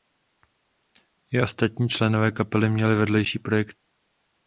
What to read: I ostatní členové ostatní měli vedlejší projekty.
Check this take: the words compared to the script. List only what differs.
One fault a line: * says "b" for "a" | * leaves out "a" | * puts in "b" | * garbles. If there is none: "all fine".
* says "kapely" for "ostatní"